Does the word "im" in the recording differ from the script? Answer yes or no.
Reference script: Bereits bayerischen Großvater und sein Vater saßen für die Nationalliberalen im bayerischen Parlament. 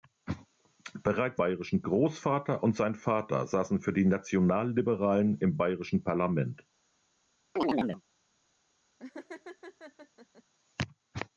no